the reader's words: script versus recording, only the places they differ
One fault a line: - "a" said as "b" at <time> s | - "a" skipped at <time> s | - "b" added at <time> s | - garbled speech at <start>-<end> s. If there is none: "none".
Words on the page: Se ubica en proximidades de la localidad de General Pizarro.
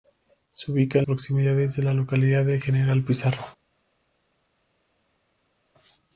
none